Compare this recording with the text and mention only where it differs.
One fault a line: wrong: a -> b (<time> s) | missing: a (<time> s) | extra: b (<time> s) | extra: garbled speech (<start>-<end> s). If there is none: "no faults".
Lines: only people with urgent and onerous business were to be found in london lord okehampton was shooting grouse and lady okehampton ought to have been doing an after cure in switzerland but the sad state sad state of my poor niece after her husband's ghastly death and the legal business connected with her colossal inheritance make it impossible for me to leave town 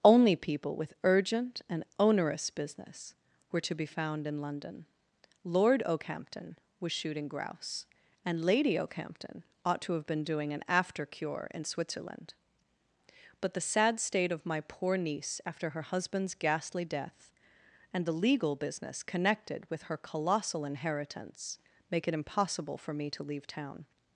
missing: sad state (14.3 s)